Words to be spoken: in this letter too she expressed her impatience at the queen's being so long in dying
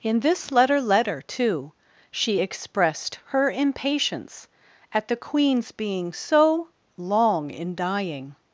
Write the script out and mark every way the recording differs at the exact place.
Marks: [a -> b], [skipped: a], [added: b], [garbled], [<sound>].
in this letter [added: letter] too she expressed her impatience at the queen's being so long in dying